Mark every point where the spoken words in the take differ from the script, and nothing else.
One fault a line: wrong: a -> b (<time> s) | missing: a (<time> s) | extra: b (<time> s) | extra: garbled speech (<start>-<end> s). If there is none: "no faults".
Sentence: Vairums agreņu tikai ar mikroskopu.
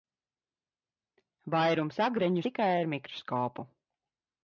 no faults